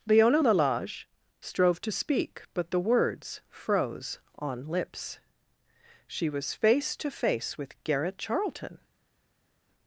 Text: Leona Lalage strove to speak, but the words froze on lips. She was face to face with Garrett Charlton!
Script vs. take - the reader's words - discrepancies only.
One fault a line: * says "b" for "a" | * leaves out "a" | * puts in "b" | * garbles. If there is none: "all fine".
all fine